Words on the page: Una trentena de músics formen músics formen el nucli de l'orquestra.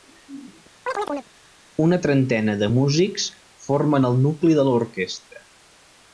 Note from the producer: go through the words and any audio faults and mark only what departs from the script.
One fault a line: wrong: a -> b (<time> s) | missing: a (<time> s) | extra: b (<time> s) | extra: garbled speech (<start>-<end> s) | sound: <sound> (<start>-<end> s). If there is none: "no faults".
sound: chirp (0.9-1.3 s)
missing: músics formen (4.1 s)